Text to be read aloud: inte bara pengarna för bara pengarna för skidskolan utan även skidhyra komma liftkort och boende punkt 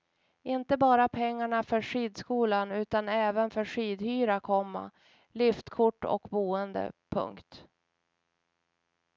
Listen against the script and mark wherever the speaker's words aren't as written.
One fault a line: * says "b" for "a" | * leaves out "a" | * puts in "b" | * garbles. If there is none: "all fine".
* leaves out "bara pengarna för"
* puts in "för"